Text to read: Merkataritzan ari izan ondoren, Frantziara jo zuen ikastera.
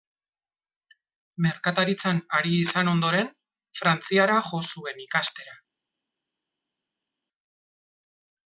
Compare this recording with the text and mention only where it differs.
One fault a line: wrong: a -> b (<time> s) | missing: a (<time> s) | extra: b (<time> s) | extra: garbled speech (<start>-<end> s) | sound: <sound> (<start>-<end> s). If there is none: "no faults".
no faults